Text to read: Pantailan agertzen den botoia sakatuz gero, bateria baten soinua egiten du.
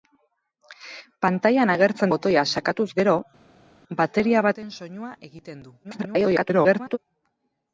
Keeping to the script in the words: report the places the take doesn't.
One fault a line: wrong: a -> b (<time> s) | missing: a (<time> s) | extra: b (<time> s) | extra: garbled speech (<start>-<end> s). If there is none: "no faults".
missing: den (2.1 s)
extra: garbled speech (5.8-7.0 s)